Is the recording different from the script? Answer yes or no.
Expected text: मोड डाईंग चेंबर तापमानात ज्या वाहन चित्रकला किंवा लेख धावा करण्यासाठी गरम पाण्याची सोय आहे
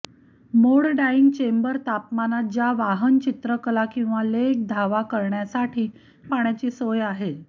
yes